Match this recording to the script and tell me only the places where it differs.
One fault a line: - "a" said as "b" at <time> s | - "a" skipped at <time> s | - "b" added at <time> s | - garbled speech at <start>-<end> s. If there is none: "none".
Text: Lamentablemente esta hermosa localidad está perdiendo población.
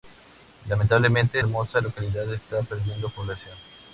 - "esta" skipped at 1.4 s